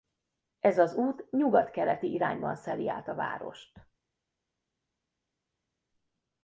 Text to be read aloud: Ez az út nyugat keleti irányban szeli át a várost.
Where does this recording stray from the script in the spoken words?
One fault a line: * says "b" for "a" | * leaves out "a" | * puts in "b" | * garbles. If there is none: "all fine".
all fine